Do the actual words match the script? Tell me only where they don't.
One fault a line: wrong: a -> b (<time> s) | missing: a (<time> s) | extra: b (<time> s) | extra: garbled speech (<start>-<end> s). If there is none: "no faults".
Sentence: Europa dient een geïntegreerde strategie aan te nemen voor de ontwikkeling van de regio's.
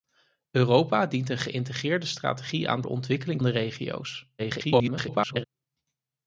missing: te nemen voor (2.8 s)
missing: van (3.4 s)
extra: garbled speech (4.4-5.4 s)